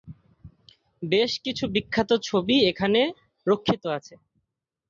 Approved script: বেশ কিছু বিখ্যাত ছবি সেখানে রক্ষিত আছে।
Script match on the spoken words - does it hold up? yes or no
no